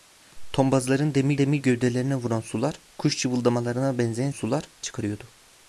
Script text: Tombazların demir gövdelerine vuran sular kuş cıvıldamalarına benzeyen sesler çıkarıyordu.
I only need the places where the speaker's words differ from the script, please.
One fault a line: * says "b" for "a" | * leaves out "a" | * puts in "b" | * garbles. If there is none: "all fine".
* puts in "demir"
* says "sular" for "sesler"